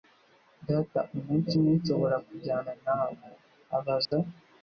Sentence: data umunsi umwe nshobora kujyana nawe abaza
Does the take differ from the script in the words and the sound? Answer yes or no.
yes